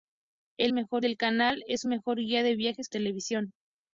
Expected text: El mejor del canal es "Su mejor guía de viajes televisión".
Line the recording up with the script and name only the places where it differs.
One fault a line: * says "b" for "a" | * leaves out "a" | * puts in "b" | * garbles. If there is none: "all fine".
all fine